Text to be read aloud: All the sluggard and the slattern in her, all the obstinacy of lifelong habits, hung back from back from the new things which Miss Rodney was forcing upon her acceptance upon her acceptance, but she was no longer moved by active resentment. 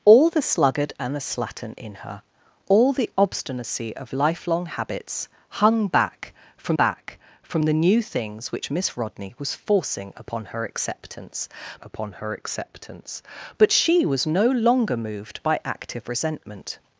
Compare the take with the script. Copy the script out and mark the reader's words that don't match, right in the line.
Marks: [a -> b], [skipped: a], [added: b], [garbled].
All the sluggard and the slattern in her, all the obstinacy of lifelong habits, hung back from back from the new things which Miss Rodney was forcing upon her acceptance upon her acceptance, but she was no longer moved by active resentment.